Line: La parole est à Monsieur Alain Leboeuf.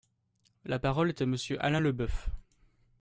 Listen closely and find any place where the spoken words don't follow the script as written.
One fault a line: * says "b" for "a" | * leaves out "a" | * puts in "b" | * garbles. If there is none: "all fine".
all fine